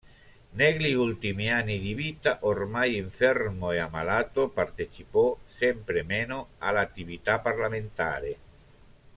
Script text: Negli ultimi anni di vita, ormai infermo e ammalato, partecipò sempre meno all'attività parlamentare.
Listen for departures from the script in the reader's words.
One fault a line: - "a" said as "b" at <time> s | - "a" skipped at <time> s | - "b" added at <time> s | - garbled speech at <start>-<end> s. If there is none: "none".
none